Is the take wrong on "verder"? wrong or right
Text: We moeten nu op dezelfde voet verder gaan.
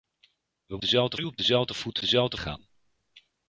wrong